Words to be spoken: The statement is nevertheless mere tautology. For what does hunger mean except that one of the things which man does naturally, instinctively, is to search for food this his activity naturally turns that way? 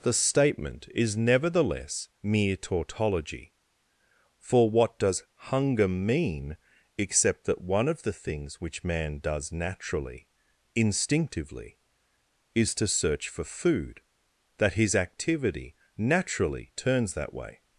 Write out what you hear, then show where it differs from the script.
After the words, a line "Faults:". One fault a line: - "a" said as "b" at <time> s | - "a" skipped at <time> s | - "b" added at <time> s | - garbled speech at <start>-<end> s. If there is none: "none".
The statement is nevertheless mere tautology. For what does hunger mean except that one of the things which man does naturally, instinctively, is to search for food that his activity naturally turns that way?
Faults:
- "this" said as "that" at 14.6 s